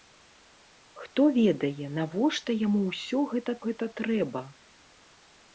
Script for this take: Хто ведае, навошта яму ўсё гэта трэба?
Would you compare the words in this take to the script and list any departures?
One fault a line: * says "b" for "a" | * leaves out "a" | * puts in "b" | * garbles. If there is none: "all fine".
* puts in "гэта"